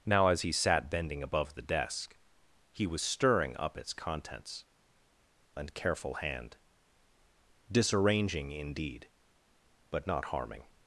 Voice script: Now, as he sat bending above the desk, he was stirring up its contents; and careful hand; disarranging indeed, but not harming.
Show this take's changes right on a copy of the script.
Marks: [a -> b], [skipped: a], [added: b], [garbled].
Now, as he sat bending above the desk, he was stirring up its contents; and careful hand; disarranging indeed, but not harming.